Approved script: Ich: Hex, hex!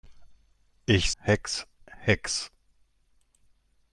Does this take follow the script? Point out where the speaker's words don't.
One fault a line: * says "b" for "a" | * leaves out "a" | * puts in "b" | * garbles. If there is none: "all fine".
all fine